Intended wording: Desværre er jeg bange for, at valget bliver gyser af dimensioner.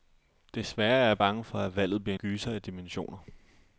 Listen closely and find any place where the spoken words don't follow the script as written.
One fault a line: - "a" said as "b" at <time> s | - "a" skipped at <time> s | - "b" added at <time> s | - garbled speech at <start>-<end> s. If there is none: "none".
none